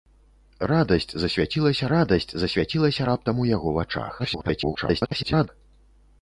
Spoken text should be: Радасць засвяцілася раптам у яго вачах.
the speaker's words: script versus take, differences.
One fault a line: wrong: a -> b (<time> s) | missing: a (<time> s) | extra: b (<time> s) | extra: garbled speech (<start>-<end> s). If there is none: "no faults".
extra: радасць засвяцілася (1.9 s)
extra: garbled speech (4.2-5.5 s)